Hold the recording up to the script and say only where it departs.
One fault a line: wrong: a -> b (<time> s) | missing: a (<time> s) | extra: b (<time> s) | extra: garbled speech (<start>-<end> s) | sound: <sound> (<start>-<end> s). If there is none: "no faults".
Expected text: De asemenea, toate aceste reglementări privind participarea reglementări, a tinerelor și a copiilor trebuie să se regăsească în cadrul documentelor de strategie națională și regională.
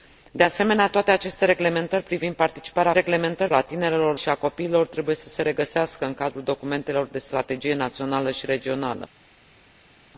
no faults